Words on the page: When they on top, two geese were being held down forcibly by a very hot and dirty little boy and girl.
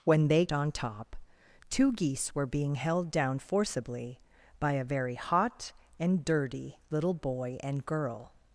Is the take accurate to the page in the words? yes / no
yes